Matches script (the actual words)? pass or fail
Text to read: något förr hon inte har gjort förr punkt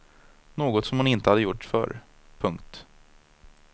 fail